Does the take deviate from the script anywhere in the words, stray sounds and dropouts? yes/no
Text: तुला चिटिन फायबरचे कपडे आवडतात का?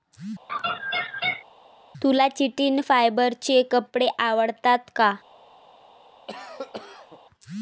yes